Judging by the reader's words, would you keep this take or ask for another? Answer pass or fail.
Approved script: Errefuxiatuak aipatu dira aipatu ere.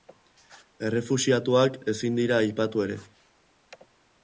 fail